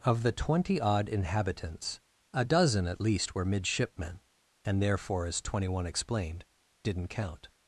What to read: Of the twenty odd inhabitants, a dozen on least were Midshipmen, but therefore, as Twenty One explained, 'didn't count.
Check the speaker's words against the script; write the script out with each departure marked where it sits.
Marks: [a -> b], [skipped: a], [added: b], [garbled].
Of the twenty odd inhabitants, a dozen [on -> at] least were Midshipmen, [but -> and] therefore, as Twenty One explained, 'didn't count.